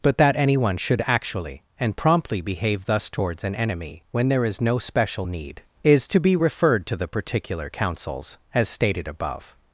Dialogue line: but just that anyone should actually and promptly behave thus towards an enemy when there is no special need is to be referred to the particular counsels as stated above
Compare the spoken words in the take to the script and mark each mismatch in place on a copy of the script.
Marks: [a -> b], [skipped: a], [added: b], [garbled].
but [skipped: just] that anyone should actually and promptly behave thus towards an enemy when there is no special need is to be referred to the particular counsels as stated above